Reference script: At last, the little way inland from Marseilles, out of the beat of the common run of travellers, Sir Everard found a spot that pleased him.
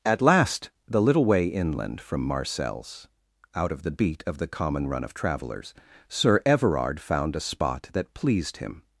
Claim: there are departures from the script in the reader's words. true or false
false